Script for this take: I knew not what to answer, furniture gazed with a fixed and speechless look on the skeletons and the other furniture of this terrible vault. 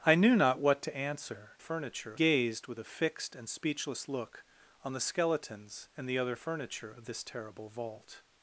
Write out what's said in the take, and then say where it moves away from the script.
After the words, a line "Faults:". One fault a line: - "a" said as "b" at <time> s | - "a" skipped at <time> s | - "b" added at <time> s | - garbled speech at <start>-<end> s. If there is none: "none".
I knew not what to answer, furniture gazed with a fixed and speechless look on the skeletons and the other furniture of this terrible vault.
Faults:
none